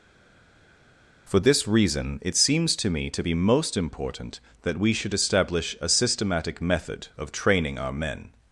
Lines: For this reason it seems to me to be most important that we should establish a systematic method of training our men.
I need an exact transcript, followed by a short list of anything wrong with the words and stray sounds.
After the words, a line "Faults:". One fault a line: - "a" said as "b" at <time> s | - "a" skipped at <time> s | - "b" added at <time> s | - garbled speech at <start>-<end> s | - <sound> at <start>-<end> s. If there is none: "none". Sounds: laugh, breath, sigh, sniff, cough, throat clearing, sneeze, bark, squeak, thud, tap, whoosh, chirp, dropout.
For this reason it seems to me to be most important that we should establish a systematic method of training our men.
Faults:
none